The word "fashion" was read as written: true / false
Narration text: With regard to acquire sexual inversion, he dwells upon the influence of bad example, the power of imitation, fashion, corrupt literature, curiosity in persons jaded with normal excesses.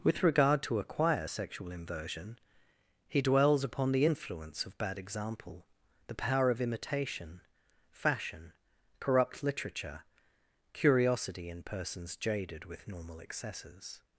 true